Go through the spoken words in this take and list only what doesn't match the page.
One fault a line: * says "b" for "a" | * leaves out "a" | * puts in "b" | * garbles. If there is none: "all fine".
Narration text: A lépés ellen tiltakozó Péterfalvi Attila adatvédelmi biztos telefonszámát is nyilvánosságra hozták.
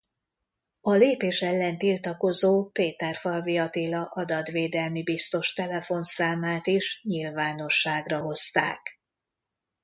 all fine